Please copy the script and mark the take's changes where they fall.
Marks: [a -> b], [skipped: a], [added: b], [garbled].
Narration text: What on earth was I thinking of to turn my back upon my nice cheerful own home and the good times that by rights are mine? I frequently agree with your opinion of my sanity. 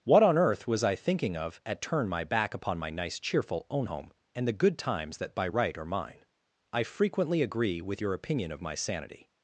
What on earth was I thinking of [to -> at] turn my back upon my nice cheerful own home and the good times that by [rights -> right] are mine? I frequently agree with your opinion of my sanity.